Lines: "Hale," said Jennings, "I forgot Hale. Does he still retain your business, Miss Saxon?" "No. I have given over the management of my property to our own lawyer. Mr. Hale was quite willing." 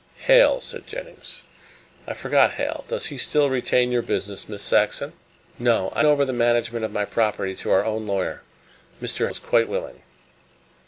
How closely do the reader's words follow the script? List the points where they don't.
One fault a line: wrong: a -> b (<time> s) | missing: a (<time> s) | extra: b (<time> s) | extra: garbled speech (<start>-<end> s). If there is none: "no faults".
missing: have given (6.0 s)
missing: Hale (9.3 s)